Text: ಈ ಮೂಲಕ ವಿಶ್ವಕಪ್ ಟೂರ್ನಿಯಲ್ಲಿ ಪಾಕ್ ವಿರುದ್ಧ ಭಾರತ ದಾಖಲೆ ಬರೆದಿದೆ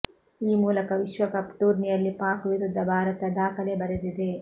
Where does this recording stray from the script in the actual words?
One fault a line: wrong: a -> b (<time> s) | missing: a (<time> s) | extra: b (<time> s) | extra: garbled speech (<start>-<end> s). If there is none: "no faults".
no faults